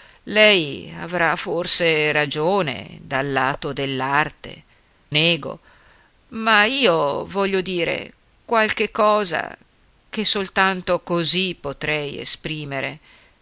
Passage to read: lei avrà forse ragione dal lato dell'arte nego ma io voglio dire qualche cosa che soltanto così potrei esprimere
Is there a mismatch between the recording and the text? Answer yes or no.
no